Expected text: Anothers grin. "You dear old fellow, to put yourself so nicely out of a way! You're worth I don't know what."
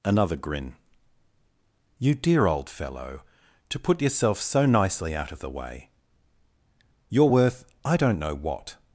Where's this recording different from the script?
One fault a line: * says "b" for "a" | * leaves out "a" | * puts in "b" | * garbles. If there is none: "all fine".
* says "Another" for "Anothers"
* says "the" for "a"